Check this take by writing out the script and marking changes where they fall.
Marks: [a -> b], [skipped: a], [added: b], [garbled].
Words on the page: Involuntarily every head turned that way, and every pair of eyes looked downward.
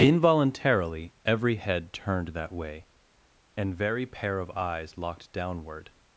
Involuntarily every head turned that way, and [every -> very] pair of eyes [looked -> locked] downward.